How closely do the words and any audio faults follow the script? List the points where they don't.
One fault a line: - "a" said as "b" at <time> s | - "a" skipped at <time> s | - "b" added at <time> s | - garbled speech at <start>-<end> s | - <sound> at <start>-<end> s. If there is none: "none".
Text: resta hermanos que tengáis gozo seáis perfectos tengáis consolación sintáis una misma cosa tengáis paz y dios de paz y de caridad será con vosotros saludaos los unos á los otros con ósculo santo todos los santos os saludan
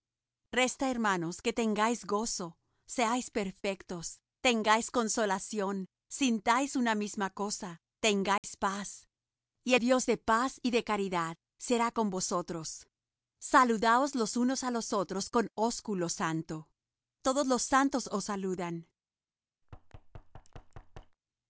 - dropout at 8.4-8.4 s
- thud at 19.6-21.2 s